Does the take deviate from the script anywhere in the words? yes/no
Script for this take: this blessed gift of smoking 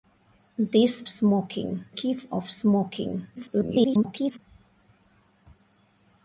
yes